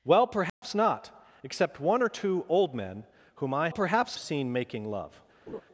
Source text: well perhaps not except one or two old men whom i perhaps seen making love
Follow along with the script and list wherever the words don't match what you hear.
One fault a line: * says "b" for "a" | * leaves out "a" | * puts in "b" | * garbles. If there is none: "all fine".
all fine